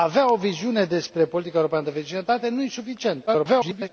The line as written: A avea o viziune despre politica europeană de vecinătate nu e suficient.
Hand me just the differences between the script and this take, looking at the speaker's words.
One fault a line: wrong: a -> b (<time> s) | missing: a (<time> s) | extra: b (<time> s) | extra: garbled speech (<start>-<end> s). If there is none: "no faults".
extra: garbled speech (3.3-3.9 s)